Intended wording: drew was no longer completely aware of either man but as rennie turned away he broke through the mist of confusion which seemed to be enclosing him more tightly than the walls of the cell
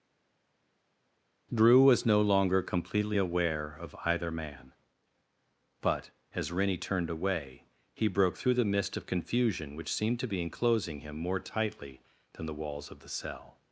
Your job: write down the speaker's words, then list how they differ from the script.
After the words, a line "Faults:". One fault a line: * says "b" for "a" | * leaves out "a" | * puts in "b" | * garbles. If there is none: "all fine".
drew was no longer completely aware of either man but as rennie turned away he broke through the mist of confusion which seemed to be enclosing him more tightly than the walls of the cell
Faults:
all fine